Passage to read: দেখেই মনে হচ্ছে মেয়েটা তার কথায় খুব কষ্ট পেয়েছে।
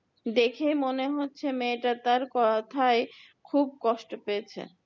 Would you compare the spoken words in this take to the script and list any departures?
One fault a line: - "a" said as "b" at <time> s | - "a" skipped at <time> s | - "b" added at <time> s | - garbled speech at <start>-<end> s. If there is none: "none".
none